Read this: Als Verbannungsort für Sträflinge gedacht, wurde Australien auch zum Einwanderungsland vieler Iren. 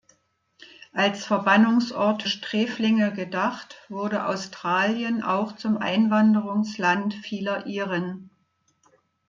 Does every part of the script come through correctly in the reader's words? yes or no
no